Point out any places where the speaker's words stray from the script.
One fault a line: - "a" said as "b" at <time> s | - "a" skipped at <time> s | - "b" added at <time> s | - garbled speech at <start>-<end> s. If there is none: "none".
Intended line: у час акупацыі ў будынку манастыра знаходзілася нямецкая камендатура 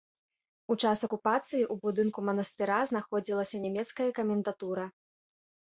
none